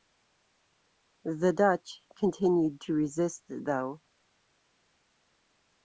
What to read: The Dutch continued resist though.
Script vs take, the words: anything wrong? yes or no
yes